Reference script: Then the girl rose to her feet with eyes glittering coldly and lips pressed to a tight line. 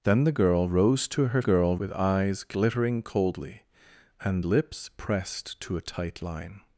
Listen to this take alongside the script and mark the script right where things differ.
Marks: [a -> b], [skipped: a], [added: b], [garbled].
Then the girl rose to her [feet -> girl] with eyes glittering coldly and lips pressed to a tight line.